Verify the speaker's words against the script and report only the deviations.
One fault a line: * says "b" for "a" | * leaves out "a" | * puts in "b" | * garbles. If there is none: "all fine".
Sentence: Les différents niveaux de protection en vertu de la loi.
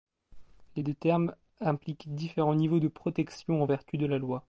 * puts in "deux termes impliquent"